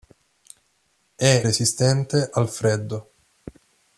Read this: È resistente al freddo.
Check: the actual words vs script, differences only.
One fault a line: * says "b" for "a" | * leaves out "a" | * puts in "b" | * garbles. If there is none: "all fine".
all fine